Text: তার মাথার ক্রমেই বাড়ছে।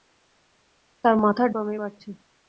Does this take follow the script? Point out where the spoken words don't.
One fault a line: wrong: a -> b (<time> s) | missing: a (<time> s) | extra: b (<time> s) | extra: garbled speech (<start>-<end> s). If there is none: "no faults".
no faults